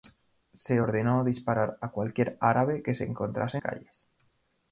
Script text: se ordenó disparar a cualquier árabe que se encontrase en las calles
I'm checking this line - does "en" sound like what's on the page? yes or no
no